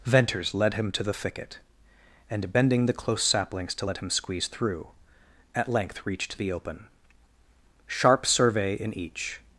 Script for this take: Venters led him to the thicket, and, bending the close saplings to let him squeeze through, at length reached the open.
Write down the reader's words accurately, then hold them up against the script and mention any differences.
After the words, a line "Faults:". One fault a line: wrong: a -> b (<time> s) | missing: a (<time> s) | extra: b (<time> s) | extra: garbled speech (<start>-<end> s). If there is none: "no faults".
Venters led him to the thicket, and, bending the close saplings to let him squeeze through, at length reached the open. Sharp survey in each
Faults:
extra: Sharp survey in each (7.9 s)